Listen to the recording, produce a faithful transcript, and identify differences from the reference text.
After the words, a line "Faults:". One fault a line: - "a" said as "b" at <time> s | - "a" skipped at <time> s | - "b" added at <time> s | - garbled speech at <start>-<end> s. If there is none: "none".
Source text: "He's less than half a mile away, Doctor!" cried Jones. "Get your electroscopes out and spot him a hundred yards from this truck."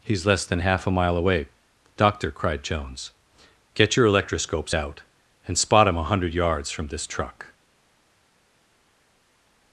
"He's less than half a mile away, Doctor!" cried Jones. "Get your electroscopes out and spot him a hundred yards from this truck."
Faults:
none